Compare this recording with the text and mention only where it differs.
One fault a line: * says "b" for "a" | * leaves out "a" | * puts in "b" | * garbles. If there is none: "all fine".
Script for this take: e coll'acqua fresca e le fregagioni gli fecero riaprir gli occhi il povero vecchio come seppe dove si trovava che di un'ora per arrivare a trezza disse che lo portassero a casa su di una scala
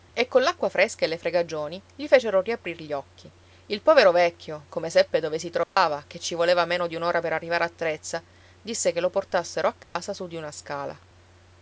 * puts in "ci voleva meno"